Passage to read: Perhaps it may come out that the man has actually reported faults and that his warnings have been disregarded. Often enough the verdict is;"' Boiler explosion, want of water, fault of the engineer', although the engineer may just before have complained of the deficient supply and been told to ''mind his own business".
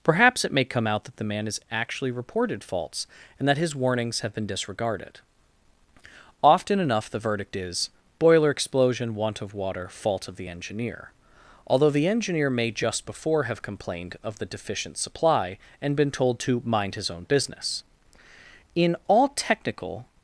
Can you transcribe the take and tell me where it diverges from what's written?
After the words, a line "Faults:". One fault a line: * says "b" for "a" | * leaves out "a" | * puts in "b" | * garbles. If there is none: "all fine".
Perhaps it may come out that the man has actually reported faults and that his warnings have been disregarded. Often enough the verdict is;"' Boiler explosion, want of water, fault of the engineer', although the engineer may just before have complained of the deficient supply and been told to ''mind his own business". In all technical
Faults:
* puts in "In all technical"